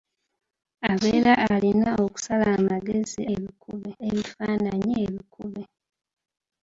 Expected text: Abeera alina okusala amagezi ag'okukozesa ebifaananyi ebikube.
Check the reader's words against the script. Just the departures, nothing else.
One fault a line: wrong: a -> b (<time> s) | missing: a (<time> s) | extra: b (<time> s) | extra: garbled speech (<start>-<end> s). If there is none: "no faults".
wrong: ag'okukozesa -> ebikube (3.3 s)